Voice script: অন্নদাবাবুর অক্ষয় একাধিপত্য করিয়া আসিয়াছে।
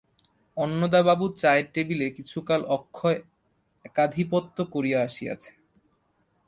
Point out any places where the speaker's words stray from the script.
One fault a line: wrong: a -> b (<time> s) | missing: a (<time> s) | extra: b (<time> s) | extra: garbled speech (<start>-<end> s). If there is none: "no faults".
extra: চায়ের টেবিলে কিছুকাল (1.4 s)